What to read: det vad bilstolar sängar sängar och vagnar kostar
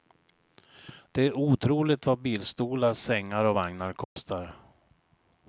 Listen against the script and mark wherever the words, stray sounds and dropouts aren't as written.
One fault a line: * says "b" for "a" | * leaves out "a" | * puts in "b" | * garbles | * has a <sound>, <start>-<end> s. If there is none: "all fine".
* puts in "är otroligt"
* leaves out "sängar"
* has a dropout, 4.0-4.2 s